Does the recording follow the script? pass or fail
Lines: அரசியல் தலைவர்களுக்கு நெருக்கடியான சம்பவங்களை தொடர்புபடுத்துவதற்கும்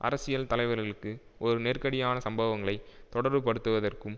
fail